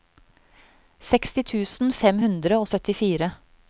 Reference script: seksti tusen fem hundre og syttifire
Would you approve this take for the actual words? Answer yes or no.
yes